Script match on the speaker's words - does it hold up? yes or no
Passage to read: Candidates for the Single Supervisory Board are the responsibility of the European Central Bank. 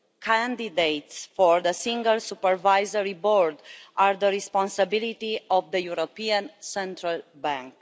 yes